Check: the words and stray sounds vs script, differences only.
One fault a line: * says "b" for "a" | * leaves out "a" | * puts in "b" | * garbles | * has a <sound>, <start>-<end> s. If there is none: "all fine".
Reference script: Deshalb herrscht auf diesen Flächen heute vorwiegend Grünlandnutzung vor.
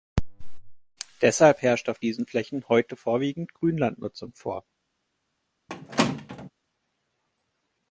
* has a squeak, 5.7-6.5 s